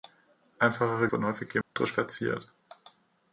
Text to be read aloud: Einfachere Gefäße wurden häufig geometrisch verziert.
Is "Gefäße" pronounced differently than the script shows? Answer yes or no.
yes